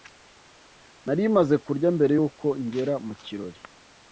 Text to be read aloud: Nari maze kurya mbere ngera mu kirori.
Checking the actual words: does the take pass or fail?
fail